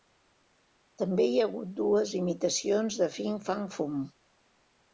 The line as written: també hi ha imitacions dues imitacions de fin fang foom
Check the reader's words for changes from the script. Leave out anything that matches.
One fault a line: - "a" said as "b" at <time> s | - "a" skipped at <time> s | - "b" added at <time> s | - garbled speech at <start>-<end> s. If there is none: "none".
- "imitacions" said as "hagut" at 1.5 s